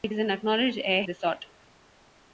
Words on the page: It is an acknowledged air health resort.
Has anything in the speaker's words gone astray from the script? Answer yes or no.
yes